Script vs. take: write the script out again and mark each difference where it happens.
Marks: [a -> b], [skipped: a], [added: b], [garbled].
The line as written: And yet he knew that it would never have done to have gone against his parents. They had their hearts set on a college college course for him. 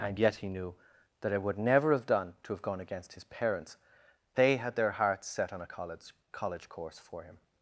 And yet he knew that it would never have done to have gone against his parents. They had their hearts set on a college college course for him.